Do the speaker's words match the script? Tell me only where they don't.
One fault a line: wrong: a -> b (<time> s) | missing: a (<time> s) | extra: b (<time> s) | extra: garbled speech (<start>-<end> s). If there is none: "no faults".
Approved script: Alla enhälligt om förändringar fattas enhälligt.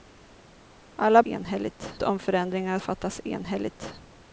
no faults